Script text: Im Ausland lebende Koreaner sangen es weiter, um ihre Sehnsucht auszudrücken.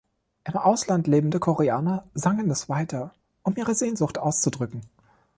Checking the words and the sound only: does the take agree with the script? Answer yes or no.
yes